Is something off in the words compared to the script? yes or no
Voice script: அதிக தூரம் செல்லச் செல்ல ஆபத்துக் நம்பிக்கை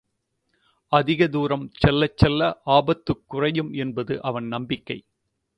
yes